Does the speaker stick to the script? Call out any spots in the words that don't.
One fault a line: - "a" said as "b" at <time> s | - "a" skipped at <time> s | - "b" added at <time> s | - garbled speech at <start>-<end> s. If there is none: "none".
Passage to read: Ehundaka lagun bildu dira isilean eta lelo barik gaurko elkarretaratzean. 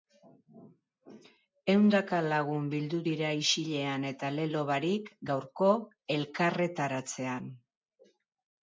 none